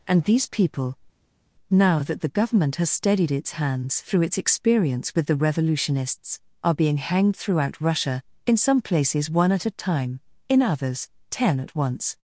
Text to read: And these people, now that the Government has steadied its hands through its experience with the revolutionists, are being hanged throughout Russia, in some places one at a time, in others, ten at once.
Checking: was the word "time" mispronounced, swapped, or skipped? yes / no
no